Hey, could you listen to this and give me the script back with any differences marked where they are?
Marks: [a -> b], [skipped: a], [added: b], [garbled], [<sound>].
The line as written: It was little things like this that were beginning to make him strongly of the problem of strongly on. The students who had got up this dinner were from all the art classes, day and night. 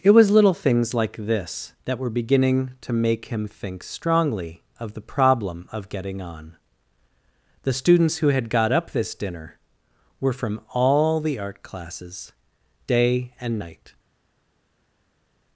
It was little things like this that were beginning to make him [added: think] strongly of the problem of [strongly -> getting] on. The students who had got up this dinner were from all the art classes, day and night.